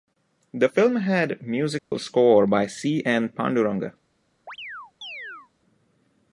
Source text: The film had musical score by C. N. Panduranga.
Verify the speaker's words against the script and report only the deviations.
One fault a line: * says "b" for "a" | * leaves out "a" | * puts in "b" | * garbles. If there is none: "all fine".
all fine